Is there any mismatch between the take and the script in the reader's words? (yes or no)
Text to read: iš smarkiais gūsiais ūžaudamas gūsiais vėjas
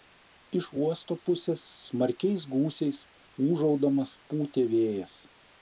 yes